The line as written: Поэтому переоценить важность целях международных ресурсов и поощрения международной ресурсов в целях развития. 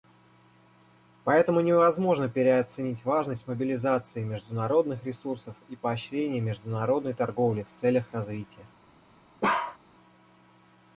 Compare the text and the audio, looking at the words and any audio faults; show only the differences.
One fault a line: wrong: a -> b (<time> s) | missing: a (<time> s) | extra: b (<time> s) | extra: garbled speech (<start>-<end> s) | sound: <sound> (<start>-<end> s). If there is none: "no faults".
extra: невозможно (1.6 s)
wrong: целях -> мобилизации (3.5 s)
wrong: ресурсов -> торговли (7.1 s)
sound: bark (9.4-9.8 s)